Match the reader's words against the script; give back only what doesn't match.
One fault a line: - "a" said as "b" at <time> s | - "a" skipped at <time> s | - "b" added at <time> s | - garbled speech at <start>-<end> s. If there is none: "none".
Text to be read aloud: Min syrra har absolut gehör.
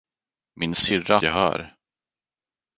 - "har absolut" skipped at 1.2 s